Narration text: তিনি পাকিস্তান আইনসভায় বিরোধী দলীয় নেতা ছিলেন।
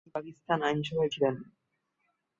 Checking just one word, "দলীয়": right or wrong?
wrong